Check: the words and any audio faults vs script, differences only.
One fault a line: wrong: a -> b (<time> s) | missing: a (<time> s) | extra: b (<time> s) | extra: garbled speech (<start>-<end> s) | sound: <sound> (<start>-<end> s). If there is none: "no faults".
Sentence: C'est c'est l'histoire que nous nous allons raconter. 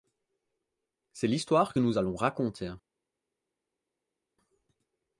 missing: c'est (1.3 s)
missing: nous (2.0 s)